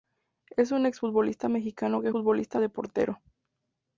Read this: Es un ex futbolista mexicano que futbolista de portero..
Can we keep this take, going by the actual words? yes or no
yes